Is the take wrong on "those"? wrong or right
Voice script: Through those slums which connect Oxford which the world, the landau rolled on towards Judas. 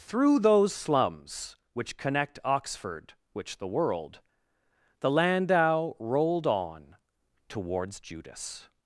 right